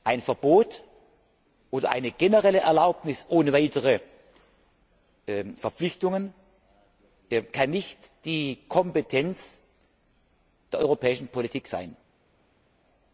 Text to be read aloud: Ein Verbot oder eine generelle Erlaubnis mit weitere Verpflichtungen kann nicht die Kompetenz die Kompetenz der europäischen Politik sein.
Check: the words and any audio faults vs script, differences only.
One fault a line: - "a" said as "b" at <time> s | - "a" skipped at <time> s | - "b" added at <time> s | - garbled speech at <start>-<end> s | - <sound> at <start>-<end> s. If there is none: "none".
- "mit" said as "ohne" at 3.3 s
- "die Kompetenz" skipped at 9.6 s